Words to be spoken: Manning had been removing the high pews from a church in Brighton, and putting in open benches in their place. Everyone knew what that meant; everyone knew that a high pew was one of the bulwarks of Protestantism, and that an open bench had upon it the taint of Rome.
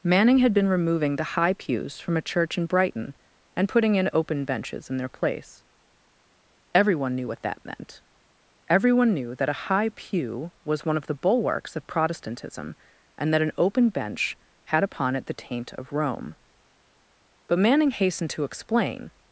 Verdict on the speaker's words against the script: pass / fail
fail